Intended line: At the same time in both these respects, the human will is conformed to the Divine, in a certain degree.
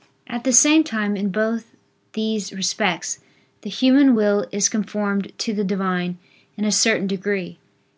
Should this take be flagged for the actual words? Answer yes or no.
no